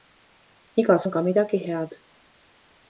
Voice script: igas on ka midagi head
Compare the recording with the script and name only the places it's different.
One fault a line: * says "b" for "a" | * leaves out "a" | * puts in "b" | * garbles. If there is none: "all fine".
all fine